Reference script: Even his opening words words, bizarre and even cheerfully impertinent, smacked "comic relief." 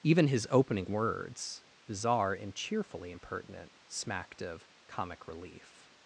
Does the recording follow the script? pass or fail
fail